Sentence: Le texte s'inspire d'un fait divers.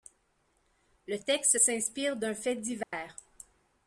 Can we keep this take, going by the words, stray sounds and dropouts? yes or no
no